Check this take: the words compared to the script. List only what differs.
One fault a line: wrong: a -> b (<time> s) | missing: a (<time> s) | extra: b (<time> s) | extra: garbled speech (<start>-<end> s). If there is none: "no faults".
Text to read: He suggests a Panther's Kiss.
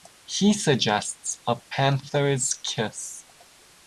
no faults